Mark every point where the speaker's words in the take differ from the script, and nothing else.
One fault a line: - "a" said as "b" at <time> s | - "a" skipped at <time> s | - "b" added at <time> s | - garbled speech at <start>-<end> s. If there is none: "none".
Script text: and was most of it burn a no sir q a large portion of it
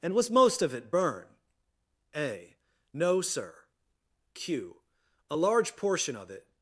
none